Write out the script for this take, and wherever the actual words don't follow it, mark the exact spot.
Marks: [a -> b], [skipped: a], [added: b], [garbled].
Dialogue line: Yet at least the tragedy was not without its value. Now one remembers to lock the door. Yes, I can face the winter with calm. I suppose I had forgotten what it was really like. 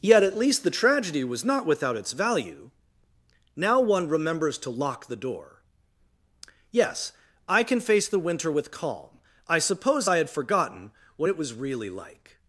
Yet at least the tragedy was not without its value. Now one remembers to lock the door. Yes, I can face the winter with calm. I suppose I had forgotten what it was really like.